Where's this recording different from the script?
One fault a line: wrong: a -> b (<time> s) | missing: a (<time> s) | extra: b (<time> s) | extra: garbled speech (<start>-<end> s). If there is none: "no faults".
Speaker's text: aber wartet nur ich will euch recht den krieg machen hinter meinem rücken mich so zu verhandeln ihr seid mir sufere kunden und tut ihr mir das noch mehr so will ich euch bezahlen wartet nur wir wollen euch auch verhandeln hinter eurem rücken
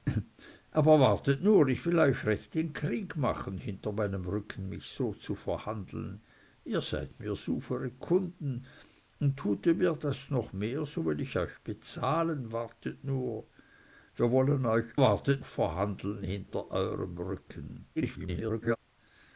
wrong: auch -> wartet (15.0 s)
extra: garbled speech (18.0-18.8 s)